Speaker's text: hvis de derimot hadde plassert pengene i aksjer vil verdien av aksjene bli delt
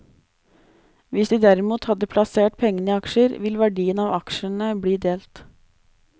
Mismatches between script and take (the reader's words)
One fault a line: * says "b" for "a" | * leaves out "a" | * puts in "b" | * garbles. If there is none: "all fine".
all fine